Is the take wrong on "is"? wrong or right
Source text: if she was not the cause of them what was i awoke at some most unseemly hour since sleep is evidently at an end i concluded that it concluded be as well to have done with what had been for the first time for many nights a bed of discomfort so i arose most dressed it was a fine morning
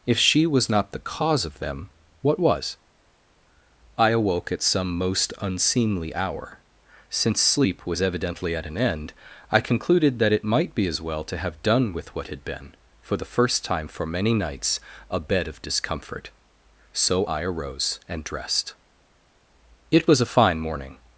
wrong